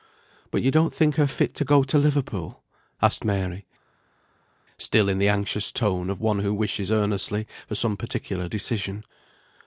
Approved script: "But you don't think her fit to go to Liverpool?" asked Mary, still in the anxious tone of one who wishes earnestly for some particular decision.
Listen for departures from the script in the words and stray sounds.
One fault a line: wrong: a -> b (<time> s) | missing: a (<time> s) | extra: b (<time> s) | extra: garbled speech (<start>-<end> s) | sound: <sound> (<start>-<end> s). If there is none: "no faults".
no faults